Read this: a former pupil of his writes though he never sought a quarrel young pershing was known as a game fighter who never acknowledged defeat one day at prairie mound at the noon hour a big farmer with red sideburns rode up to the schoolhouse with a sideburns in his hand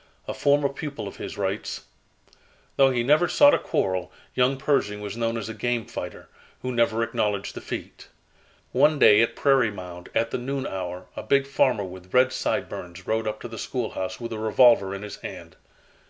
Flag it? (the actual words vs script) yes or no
yes